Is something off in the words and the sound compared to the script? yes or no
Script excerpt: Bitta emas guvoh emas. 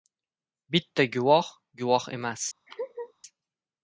yes